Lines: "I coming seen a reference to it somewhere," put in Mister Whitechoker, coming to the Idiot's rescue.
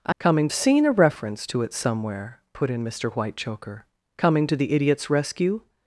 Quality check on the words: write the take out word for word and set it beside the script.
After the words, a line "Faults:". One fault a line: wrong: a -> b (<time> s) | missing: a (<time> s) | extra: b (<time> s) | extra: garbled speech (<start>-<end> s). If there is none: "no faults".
"I coming seen a reference to it somewhere," put in Mister Whitechoker, coming to the Idiot's rescue.
Faults:
no faults